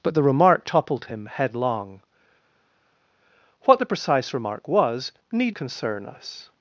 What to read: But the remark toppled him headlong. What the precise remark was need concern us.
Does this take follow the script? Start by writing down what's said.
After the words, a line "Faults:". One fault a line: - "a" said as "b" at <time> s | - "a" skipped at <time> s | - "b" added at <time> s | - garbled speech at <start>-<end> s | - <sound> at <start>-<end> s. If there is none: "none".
But the remark toppled him headlong. What the precise remark was need concern us.
Faults:
none